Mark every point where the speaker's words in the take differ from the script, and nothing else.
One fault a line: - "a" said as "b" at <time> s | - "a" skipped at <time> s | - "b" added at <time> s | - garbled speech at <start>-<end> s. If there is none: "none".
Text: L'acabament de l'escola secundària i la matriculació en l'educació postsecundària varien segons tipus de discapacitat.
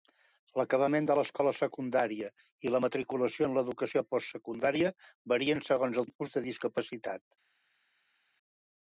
none